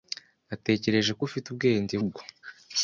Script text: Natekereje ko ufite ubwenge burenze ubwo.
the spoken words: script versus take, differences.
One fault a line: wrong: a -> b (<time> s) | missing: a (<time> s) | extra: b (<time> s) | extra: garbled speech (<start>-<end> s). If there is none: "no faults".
missing: burenze (2.0 s)